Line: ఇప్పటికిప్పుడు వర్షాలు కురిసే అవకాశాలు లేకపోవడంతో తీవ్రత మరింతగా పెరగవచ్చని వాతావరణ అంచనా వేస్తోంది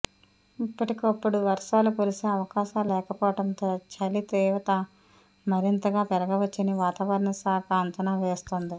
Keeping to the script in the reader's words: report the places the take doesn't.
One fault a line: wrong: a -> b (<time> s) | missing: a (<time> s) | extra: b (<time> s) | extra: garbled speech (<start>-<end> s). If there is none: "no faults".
extra: చలి (3.9 s)
extra: శాఖ (7.4 s)